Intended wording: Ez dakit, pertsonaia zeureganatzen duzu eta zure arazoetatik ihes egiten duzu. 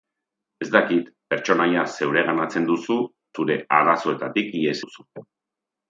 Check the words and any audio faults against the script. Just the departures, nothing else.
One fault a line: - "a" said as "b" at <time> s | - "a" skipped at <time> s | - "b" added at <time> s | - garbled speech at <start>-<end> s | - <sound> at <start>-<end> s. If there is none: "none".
- "eta" skipped at 3.0 s
- "egiten" skipped at 4.8 s